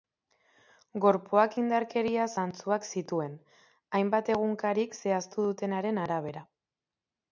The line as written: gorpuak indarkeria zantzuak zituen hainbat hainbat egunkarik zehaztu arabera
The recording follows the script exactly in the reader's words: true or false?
false